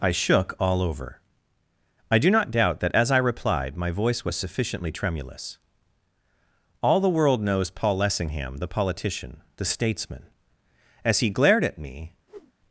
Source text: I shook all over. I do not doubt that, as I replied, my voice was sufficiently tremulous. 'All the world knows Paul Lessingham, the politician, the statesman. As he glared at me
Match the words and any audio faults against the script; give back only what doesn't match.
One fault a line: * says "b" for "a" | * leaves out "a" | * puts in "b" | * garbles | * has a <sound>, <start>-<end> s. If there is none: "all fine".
* has a whoosh, 12.3-12.5 s